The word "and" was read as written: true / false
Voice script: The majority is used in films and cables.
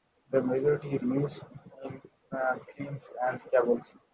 true